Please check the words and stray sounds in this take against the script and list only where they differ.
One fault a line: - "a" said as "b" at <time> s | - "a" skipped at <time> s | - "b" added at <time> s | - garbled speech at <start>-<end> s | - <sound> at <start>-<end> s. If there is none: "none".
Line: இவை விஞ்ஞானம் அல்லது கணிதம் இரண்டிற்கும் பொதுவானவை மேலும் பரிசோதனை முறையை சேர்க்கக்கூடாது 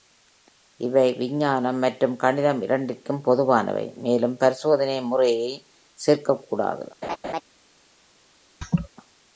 - "அல்லது" said as "மற்றும்" at 1.8 s
- laugh at 7.0-7.4 s
- laugh at 8.6-8.9 s